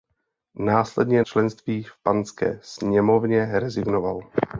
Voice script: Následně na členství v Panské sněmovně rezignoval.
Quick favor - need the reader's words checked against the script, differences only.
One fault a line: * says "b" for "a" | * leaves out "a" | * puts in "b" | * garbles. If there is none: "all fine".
* leaves out "na"